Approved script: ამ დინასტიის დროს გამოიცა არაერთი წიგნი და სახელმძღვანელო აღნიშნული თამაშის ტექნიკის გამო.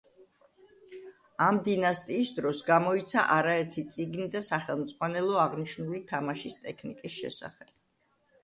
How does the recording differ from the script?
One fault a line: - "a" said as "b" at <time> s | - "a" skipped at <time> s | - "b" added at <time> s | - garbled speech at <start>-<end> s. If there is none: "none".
- "გამო" said as "შესახებ" at 7.2 s